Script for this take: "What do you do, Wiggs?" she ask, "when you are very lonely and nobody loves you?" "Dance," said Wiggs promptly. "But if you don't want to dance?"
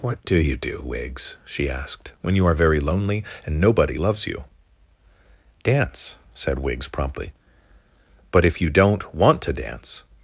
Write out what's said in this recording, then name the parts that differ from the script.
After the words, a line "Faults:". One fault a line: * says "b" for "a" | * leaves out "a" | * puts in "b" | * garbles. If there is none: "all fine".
"What do you do, Wiggs?" she asked, "when you are very lonely and nobody loves you?" "Dance," said Wiggs promptly. "But if you don't want to dance?"
Faults:
* says "asked" for "ask"